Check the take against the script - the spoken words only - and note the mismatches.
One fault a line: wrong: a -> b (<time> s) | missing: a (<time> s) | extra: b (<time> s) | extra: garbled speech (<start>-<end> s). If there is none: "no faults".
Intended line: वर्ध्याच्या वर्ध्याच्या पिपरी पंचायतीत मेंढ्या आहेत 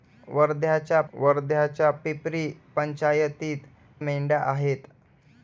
no faults